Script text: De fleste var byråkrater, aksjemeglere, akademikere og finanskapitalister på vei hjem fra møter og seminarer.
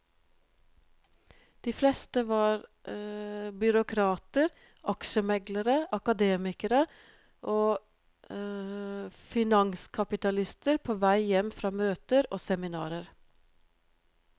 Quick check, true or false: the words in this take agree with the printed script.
true